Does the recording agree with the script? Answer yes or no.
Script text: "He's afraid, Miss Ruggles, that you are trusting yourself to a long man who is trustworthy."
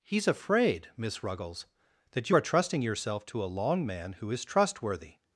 yes